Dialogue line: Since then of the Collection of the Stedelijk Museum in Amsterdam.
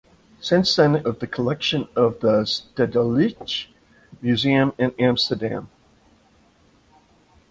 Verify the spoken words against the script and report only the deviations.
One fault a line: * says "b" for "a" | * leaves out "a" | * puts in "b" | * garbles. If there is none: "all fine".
all fine